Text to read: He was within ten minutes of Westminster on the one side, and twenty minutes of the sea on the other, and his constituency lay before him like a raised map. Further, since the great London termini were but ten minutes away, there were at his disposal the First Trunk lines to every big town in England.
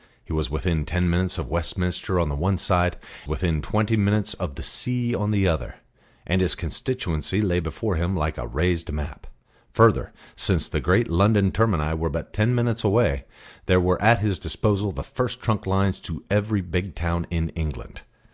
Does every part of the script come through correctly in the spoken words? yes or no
no